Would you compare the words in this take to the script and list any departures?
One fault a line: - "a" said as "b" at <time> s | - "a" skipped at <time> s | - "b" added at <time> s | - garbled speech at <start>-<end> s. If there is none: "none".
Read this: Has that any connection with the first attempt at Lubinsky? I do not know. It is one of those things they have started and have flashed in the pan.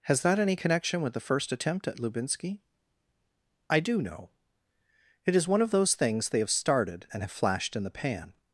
- "not" skipped at 4.0 s